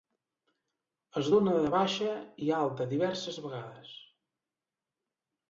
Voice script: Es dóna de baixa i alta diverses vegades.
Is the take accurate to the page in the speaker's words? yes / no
yes